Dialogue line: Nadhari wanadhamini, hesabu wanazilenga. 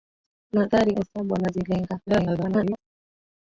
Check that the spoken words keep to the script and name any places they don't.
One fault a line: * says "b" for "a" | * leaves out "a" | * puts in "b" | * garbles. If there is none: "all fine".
* leaves out "wanadhamini"
* garbles